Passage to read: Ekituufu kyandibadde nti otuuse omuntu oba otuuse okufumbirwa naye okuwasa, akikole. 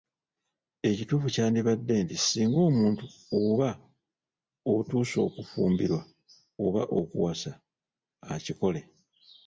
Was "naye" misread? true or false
true